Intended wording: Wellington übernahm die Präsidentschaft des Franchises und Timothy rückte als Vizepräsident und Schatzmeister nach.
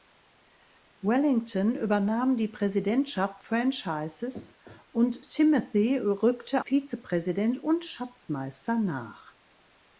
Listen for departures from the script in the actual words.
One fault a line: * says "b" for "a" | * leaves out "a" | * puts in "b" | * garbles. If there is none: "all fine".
* leaves out "des"
* leaves out "als"